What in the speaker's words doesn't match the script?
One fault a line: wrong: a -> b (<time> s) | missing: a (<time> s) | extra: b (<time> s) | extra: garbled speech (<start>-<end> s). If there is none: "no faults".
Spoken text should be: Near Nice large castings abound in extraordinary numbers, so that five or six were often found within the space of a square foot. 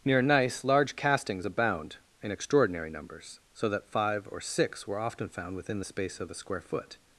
no faults